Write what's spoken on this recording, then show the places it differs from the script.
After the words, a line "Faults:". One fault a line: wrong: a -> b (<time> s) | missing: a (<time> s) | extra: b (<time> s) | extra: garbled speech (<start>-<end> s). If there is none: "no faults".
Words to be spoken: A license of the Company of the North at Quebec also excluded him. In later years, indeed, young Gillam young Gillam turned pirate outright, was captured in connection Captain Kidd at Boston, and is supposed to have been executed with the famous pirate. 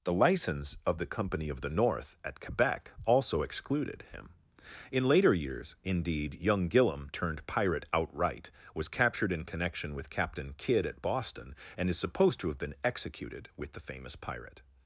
The license of the Company of the North at Quebec also excluded him. In later years, indeed, young Gillam turned pirate outright, was captured in connection with Captain Kidd at Boston, and is supposed to have been executed with the famous pirate.
Faults:
wrong: A -> The (0.0 s)
missing: young Gillam (7.1 s)
extra: with (9.9 s)